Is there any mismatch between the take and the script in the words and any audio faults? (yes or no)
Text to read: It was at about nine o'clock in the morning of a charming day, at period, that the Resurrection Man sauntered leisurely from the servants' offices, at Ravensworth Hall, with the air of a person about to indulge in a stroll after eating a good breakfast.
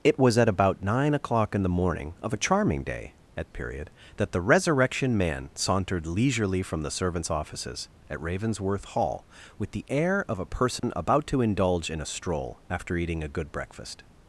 yes